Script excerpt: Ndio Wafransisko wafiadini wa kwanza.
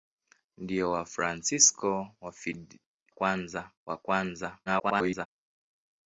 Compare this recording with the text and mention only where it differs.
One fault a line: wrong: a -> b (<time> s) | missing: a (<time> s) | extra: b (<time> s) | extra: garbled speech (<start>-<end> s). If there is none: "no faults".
wrong: wafiadini -> kwanza (3.1 s)
extra: garbled speech (4.7-5.3 s)